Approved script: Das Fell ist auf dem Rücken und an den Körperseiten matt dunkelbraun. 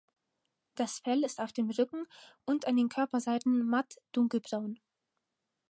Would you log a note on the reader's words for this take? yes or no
no